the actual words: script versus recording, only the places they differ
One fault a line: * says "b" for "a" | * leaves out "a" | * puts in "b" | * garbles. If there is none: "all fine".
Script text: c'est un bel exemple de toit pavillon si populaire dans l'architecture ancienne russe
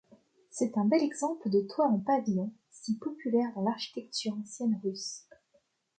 * puts in "en"